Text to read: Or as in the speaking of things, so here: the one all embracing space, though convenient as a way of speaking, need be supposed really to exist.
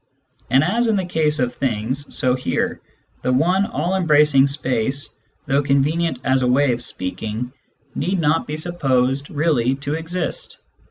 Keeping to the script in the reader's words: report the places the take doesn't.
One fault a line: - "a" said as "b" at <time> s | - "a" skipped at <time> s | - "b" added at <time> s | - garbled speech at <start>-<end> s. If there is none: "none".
- "Or" said as "And" at 0.5 s
- "speaking" said as "case" at 1.1 s
- "not" added at 8.2 s